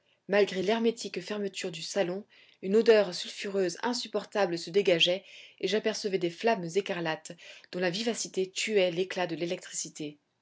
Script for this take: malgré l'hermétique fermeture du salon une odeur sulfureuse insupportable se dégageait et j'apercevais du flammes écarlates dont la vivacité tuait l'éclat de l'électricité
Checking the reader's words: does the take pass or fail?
fail